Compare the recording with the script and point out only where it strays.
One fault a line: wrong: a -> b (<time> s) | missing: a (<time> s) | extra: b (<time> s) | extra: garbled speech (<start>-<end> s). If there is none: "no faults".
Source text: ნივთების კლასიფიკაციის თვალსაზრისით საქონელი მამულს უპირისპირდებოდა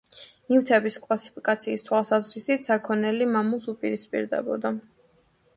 no faults